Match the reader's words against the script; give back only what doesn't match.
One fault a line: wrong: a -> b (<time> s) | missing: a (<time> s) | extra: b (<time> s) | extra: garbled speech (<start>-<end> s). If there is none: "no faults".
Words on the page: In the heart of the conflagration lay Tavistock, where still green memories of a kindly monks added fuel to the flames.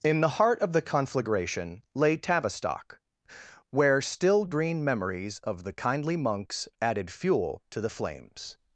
wrong: a -> the (5.6 s)